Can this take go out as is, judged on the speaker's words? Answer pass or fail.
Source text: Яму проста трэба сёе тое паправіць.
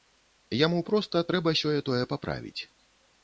pass